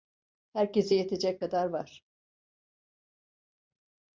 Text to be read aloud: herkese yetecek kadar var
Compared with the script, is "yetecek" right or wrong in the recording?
right